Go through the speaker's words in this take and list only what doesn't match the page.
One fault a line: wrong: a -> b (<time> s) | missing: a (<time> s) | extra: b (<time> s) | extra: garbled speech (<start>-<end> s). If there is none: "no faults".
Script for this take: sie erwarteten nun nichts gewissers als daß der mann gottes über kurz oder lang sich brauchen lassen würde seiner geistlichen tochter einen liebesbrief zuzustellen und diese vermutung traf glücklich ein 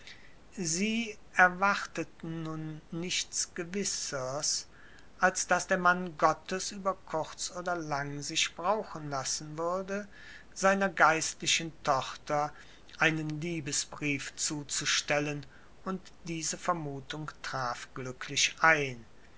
no faults